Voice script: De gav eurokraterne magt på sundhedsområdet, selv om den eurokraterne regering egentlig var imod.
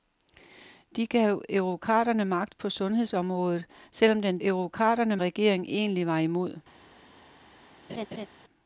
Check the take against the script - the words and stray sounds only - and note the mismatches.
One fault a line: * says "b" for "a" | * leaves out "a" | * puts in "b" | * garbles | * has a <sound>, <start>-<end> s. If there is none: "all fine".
* has a laugh, 7.9-8.3 s